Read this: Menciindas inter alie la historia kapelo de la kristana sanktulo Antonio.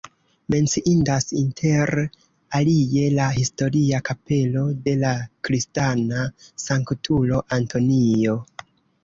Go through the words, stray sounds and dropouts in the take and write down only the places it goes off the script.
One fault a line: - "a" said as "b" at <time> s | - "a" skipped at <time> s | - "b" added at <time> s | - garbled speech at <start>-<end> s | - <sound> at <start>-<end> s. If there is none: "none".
none